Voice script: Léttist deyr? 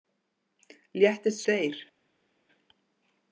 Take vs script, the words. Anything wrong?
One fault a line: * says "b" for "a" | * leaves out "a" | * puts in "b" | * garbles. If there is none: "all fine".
all fine